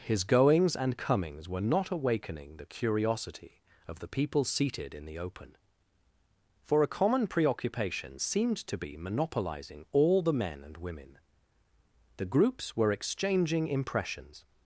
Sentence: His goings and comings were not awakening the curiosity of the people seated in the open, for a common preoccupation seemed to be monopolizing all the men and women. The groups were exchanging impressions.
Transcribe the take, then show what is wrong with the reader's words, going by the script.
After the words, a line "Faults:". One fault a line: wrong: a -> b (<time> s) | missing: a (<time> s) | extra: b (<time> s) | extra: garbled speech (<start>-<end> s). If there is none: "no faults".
His goings and comings were not awakening the curiosity of the people seated in the open, for a common preoccupation seemed to be monopolizing all the men and women. The groups were exchanging impressions.
Faults:
no faults